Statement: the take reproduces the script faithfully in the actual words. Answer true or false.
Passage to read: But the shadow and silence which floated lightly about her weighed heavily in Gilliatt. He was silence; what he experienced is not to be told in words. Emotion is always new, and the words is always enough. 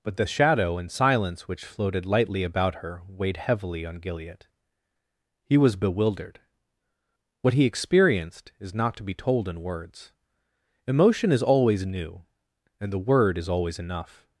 false